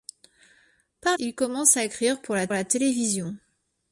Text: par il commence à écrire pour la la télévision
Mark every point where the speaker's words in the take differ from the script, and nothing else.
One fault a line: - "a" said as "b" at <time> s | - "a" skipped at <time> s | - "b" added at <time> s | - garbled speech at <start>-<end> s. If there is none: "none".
none